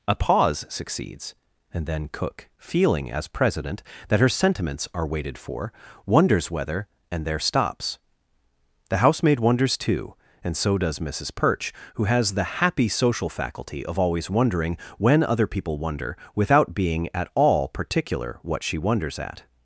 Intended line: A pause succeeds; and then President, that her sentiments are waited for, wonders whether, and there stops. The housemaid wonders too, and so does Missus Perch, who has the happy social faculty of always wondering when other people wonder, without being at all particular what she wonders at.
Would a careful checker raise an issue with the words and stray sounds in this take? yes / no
yes